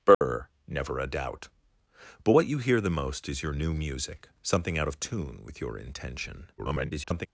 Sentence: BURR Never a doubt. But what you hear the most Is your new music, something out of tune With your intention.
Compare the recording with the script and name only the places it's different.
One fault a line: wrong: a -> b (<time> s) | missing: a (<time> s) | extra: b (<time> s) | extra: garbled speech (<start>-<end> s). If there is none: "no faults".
extra: garbled speech (6.6-7.3 s)